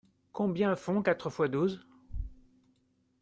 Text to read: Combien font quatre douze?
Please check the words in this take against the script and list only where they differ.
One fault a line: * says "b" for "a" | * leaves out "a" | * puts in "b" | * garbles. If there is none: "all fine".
* puts in "fois"